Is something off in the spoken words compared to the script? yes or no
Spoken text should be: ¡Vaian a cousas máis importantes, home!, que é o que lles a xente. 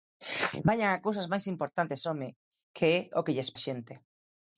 no